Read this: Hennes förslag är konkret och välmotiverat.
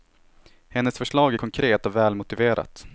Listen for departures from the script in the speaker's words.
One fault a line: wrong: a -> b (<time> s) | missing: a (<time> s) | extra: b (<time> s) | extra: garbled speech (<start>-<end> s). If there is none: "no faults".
no faults